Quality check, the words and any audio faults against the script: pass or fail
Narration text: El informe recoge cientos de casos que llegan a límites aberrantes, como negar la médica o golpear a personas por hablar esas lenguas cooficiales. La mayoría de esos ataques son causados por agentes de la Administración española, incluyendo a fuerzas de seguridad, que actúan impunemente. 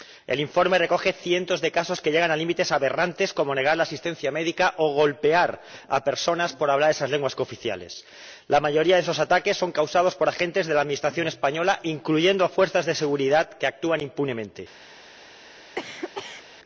fail